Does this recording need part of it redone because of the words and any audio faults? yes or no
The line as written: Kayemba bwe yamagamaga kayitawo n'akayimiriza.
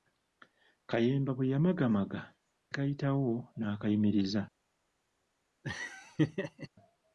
yes